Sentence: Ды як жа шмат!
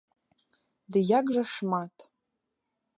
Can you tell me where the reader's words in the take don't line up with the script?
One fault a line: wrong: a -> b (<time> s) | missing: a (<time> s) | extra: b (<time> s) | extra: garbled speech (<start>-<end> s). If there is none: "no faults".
no faults